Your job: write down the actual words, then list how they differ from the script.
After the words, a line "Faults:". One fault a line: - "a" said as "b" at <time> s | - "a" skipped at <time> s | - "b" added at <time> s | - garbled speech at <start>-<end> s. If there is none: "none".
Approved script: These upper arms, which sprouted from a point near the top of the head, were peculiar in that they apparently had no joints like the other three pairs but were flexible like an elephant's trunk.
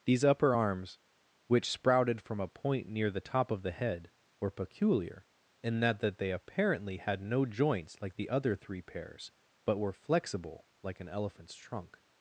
These upper arms, which sprouted from a point near the top of the head, were peculiar in that that they apparently had no joints like the other three pairs but were flexible like an elephant's trunk.
Faults:
- "that" added at 6.0 s